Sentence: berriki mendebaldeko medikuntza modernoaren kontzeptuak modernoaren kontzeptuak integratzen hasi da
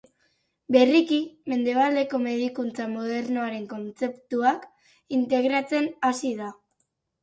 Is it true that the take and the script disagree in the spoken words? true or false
true